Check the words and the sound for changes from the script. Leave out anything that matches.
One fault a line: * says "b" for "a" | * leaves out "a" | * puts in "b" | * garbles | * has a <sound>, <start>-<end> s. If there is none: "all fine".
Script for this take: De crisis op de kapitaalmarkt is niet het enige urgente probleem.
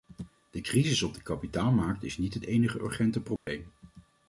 * has a dropout, 3.4-3.5 s